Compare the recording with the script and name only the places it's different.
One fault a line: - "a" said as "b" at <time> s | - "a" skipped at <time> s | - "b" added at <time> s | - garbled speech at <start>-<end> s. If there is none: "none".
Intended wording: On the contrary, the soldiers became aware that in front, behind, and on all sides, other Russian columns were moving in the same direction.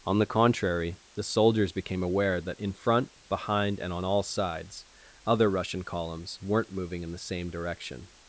- "were" said as "weren't" at 6.4 s